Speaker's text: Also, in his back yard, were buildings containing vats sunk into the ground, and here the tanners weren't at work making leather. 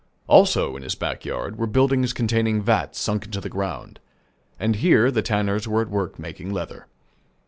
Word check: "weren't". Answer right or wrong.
wrong